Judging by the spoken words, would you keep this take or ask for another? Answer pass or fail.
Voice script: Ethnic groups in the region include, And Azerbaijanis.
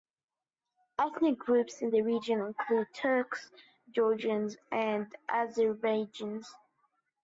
fail